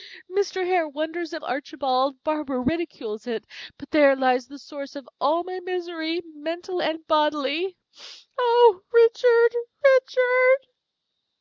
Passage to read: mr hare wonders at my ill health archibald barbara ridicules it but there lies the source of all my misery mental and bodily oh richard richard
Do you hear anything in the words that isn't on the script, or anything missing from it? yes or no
yes